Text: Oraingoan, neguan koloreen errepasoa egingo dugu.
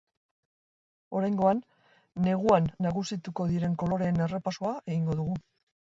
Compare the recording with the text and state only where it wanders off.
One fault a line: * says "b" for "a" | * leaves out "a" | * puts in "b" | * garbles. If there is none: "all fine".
* puts in "nagusituko diren"